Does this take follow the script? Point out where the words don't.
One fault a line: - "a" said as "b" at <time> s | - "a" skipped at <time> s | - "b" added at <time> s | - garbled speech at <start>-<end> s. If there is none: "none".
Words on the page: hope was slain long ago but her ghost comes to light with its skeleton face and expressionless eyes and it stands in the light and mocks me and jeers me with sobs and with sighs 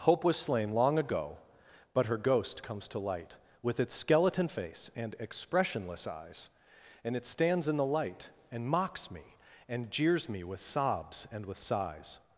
none